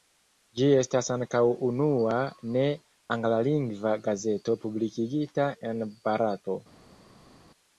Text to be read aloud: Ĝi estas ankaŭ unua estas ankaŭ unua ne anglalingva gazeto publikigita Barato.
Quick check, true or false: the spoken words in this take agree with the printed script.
false